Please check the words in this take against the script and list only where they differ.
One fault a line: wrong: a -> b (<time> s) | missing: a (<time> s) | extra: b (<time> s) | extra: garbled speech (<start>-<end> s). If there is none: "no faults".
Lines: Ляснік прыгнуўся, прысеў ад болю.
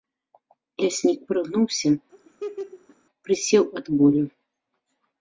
no faults